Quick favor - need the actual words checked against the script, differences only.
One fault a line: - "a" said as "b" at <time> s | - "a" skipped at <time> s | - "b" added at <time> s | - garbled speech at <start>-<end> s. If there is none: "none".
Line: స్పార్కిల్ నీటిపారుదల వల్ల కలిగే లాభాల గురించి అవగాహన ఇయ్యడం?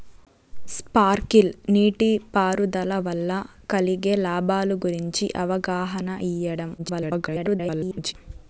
- garbled speech at 6.8-8.1 s